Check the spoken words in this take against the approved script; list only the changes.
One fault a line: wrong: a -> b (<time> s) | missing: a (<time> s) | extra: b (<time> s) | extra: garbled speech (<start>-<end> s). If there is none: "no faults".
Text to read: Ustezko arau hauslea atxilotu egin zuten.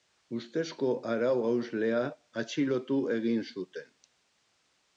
no faults